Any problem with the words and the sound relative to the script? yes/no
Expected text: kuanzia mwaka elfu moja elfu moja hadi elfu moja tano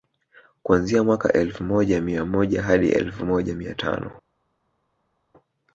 yes